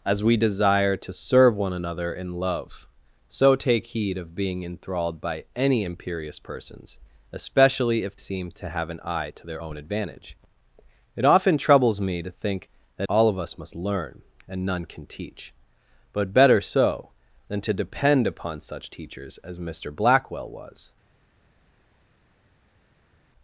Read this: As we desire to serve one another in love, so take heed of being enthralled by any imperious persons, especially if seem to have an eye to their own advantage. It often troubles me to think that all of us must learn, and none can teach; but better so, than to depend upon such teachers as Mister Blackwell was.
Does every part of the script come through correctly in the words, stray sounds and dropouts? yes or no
yes